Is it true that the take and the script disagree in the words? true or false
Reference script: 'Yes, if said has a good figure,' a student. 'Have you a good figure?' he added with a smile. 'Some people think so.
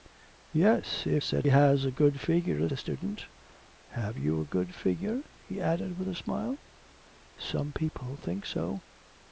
false